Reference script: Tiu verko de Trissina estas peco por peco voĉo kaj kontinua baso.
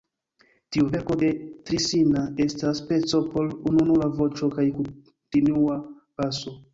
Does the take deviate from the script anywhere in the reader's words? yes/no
yes